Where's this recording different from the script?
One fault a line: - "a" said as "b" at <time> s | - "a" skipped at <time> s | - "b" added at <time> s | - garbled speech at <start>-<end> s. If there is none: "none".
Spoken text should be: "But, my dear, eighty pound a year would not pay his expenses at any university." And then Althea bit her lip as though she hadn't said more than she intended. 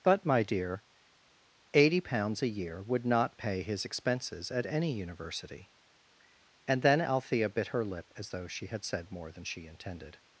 - "pound" said as "pounds" at 2.0 s
- "hadn't" said as "had" at 8.7 s